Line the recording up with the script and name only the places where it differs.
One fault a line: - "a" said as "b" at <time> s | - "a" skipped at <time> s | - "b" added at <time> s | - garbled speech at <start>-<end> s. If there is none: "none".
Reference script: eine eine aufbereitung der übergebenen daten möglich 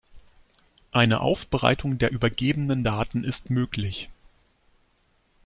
- "eine" skipped at 1.2 s
- "ist" added at 3.2 s